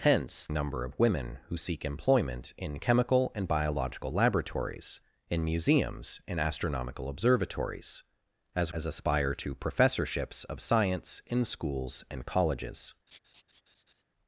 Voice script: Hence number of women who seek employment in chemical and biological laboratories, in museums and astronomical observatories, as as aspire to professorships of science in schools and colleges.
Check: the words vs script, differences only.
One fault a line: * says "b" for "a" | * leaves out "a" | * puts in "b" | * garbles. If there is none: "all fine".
all fine